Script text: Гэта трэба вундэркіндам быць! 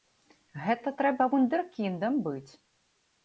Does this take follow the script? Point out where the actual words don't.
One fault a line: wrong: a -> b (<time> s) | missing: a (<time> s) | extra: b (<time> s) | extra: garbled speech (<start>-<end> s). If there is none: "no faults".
no faults